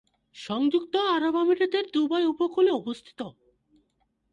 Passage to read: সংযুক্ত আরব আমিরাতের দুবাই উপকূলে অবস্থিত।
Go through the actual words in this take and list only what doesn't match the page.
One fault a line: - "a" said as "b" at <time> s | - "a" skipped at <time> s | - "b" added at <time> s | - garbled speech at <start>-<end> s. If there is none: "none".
none